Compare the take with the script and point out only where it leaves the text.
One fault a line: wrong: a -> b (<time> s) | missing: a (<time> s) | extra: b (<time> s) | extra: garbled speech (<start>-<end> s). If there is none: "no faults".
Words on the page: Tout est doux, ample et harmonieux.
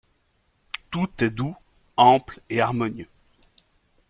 no faults